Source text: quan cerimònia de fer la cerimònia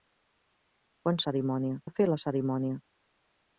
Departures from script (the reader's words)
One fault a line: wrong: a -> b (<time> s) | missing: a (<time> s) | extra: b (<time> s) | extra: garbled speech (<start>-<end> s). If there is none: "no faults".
no faults